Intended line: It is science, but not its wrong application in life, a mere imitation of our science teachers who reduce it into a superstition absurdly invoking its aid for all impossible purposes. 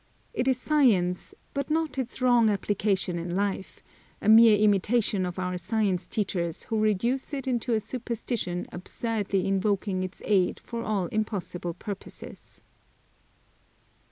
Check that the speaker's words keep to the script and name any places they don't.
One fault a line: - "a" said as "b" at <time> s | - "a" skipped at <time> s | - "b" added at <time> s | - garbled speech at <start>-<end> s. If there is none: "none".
none